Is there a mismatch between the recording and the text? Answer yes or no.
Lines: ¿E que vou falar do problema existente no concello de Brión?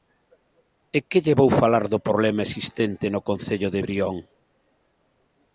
yes